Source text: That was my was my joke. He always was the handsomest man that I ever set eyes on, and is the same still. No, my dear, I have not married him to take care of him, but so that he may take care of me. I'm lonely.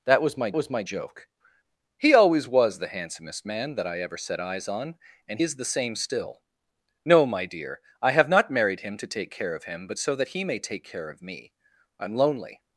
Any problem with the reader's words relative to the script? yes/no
no